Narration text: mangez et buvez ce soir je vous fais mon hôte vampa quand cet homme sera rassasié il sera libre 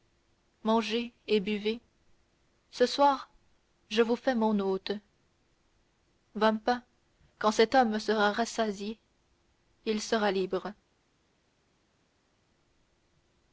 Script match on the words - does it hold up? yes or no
yes